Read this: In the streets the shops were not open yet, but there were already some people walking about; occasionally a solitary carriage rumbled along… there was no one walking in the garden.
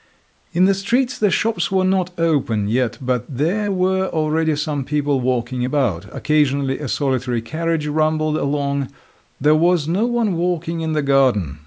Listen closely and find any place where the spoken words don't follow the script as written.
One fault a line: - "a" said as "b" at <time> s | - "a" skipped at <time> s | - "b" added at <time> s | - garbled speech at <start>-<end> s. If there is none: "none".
none